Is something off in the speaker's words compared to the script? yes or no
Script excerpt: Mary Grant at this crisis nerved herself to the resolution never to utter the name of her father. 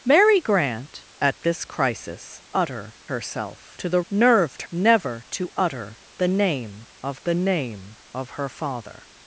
yes